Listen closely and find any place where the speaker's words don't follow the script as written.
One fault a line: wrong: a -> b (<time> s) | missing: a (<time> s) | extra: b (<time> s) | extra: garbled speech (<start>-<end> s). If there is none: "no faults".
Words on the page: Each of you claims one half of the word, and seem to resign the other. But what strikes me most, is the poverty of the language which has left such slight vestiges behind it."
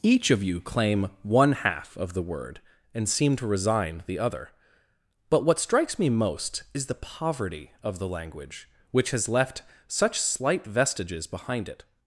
wrong: claims -> claim (0.6 s)